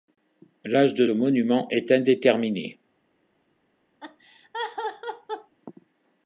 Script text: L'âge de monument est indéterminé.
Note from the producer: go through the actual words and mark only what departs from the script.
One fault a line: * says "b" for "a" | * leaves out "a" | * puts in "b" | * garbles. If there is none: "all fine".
all fine